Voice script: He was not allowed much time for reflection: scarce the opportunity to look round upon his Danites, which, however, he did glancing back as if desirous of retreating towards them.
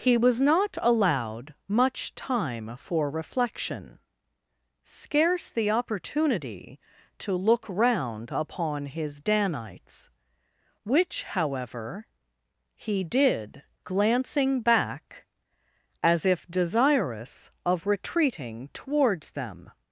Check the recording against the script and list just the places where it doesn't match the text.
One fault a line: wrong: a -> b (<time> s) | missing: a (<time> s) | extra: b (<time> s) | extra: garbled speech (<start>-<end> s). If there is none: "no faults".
no faults